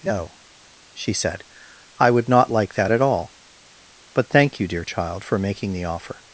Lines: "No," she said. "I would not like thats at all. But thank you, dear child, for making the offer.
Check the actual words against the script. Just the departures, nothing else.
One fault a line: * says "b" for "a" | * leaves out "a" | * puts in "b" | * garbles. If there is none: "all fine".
* says "that" for "thats"